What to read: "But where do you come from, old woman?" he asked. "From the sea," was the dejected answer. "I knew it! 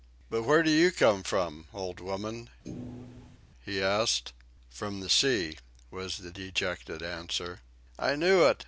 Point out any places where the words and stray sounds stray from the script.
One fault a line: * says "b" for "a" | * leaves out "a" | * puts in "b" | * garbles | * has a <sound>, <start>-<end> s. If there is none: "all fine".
* has a thud, 2.6-3.4 s